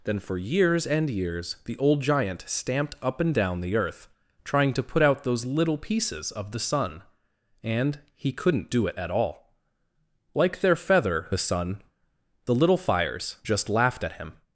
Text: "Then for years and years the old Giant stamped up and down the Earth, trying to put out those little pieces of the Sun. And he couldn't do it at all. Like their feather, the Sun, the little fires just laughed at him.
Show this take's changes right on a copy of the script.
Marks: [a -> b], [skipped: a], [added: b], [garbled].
"Then for years and years the old Giant stamped up and down the Earth, trying to put out those little pieces of the Sun. And he couldn't do it at all. Like their feather, the Sun, the little fires just laughed at him.